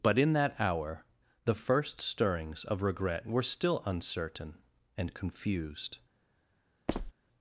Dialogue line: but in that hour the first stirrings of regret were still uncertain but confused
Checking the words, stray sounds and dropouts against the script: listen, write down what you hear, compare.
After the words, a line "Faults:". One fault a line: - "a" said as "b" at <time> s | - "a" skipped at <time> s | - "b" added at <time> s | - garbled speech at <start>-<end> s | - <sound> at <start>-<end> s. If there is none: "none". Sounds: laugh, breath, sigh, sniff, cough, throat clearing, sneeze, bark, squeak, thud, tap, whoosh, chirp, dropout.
but in that hour the first stirrings of regret were still uncertain and confused
Faults:
- "but" said as "and" at 5.0 s
- squeak at 6.9-7.1 s